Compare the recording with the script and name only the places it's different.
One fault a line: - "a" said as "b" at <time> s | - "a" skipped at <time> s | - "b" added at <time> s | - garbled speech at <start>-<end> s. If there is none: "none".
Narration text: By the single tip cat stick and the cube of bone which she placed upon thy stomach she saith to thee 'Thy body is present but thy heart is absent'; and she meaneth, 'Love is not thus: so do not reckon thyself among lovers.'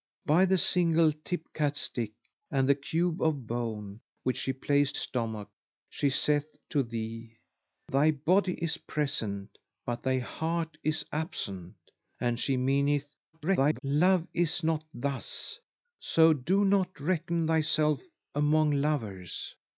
- "upon thy" skipped at 5.0 s
- garbled speech at 13.3-13.8 s